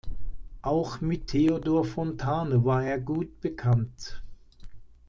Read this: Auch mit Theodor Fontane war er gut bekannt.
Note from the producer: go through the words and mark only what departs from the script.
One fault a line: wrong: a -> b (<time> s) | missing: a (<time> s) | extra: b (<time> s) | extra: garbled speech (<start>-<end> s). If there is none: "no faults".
no faults